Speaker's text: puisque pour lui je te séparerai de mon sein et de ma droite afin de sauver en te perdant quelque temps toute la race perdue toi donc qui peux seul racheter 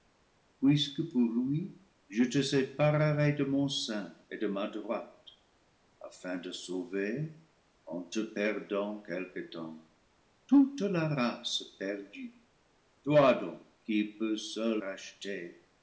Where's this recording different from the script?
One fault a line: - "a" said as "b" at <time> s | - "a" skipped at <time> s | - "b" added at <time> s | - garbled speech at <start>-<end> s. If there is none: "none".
none